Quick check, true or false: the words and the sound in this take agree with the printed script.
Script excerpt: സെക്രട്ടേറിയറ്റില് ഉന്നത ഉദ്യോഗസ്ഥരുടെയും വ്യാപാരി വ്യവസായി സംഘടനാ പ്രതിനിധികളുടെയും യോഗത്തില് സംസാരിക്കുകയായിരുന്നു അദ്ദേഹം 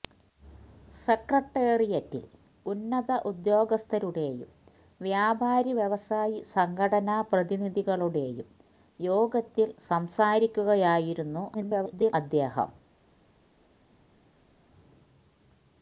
false